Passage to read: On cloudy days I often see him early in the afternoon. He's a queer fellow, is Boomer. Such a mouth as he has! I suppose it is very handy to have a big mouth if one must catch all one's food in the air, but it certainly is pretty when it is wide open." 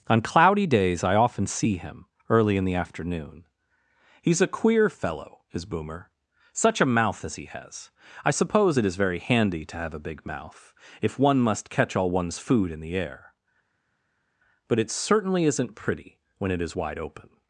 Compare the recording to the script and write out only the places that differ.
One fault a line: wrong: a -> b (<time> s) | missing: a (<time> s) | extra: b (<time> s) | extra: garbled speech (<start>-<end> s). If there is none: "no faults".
wrong: is -> isn't (15.4 s)